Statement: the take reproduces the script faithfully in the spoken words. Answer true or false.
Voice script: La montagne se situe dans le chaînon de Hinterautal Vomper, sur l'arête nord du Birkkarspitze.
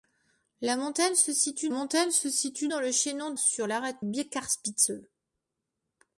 false